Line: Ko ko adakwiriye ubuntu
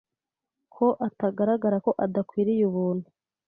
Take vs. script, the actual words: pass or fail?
fail